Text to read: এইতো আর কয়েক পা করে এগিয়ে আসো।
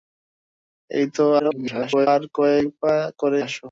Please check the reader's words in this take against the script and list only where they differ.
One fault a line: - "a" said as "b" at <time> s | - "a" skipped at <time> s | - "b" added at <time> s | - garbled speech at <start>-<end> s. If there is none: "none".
- garbled speech at 1.4-2.1 s
- "এগিয়ে" skipped at 3.4 s